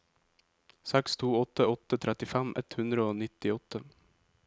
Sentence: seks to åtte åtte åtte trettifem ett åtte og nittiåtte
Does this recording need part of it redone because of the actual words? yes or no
yes